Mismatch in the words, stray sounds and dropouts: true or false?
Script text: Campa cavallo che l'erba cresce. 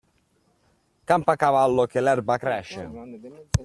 false